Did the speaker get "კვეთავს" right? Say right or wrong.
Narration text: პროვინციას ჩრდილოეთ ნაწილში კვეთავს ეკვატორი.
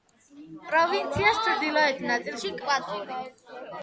wrong